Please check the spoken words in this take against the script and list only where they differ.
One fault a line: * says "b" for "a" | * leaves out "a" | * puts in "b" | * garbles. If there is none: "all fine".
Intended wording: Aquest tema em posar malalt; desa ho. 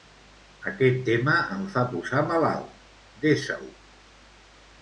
* puts in "fa"